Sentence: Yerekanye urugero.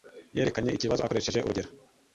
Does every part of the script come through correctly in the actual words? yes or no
no